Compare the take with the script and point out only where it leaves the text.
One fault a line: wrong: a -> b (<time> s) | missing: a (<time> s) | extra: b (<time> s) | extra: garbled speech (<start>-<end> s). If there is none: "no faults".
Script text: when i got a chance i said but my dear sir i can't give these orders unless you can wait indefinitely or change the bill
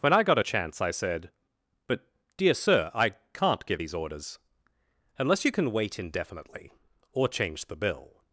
missing: my (2.0 s)